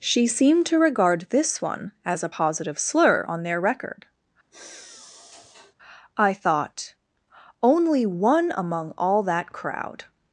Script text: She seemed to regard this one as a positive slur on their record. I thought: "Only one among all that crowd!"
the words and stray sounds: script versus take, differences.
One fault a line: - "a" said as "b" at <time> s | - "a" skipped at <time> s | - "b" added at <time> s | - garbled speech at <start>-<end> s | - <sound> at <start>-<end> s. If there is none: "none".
- sigh at 4.5-5.7 s